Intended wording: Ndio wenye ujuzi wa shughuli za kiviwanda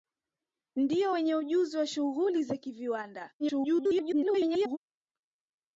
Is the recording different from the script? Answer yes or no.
yes